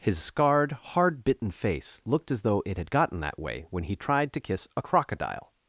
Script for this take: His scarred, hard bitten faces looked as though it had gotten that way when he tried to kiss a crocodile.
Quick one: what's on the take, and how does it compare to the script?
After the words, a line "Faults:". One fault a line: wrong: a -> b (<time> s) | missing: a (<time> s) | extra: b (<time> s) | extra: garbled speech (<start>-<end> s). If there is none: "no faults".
His scarred, hard bitten face looked as though it had gotten that way when he tried to kiss a crocodile.
Faults:
wrong: faces -> face (1.5 s)